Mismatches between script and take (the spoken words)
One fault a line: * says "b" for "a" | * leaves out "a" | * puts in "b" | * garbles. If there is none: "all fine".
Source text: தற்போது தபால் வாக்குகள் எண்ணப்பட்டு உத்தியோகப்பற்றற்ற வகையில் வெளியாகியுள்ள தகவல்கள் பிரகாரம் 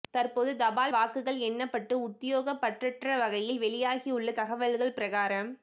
all fine